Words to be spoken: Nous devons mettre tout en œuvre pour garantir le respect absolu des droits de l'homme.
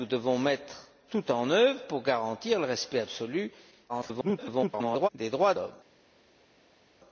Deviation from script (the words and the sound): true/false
true